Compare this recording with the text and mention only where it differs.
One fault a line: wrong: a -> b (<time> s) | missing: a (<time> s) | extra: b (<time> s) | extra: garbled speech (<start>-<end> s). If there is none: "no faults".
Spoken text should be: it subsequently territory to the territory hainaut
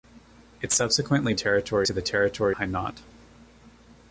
no faults